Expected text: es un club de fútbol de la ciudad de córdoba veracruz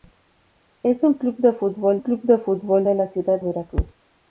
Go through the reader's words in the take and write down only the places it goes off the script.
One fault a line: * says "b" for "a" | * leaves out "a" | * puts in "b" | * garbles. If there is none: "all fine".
* puts in "club"
* puts in "fútbol de"
* leaves out "de córdoba"